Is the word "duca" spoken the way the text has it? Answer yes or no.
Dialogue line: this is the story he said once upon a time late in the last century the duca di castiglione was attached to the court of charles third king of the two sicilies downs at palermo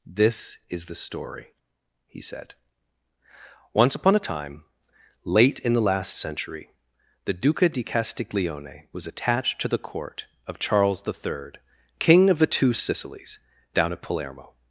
yes